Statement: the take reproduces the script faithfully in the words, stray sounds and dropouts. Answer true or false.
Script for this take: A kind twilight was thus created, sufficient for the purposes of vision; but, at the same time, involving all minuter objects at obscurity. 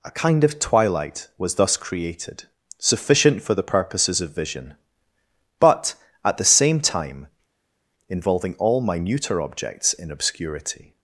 false